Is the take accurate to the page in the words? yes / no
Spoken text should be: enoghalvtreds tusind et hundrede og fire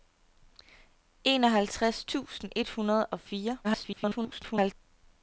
no